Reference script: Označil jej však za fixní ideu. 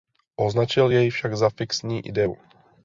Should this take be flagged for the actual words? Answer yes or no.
no